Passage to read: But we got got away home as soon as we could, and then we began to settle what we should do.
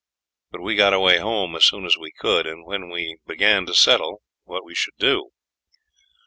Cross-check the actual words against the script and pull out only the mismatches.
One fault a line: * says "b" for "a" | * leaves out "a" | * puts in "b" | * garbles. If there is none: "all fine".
* leaves out "got"